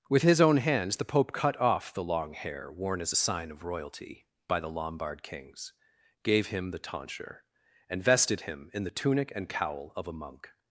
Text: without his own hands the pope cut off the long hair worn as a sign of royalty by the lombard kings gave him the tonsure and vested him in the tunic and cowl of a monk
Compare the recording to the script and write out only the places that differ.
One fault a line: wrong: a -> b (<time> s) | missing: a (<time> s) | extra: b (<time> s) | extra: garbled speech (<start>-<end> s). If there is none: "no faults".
wrong: without -> with (0.1 s)